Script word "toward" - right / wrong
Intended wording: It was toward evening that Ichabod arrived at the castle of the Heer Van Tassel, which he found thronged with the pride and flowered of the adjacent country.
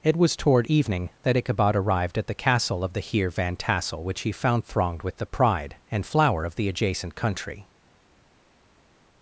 right